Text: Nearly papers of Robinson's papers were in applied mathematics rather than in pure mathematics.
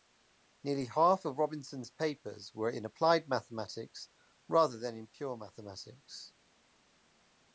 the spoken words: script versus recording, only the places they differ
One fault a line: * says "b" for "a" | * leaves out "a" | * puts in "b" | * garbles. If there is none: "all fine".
* says "half" for "papers"